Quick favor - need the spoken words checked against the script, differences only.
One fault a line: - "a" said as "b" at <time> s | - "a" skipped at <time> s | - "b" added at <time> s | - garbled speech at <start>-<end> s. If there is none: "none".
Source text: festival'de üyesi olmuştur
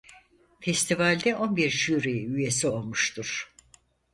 - "on bir jüri" added at 1.4 s